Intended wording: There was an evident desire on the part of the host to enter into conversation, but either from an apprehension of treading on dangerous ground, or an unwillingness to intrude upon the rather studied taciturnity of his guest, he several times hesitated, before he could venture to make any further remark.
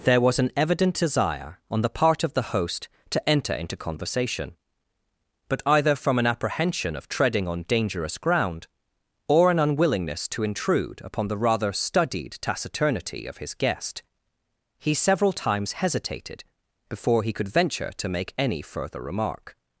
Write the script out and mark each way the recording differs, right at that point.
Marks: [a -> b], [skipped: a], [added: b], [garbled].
There was an evident desire on the part of the host to enter into conversation, but either from an apprehension of treading on dangerous ground, or an unwillingness to intrude upon the rather studied taciturnity of his guest, he several times hesitated, before he could venture to make any further remark.